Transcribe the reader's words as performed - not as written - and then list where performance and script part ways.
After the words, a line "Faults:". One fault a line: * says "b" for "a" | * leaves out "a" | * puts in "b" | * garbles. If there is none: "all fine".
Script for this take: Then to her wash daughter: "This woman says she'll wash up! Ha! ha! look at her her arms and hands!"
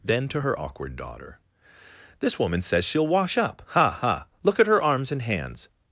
Then to her awkward daughter: "This woman says she'll wash up! Ha! ha! look at her arms and hands!"
Faults:
* says "awkward" for "wash"
* leaves out "her"